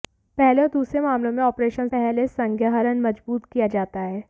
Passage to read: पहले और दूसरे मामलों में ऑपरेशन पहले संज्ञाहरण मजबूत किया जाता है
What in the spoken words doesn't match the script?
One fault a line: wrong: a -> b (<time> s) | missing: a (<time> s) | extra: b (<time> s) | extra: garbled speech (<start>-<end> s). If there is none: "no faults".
no faults